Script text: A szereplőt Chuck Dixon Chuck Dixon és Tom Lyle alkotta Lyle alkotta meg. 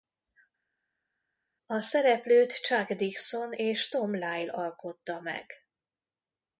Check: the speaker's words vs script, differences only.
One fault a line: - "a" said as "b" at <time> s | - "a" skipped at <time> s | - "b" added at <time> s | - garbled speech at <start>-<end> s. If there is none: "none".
- "Chuck Dixon" skipped at 3.5 s
- "Lyle alkotta" skipped at 5.2 s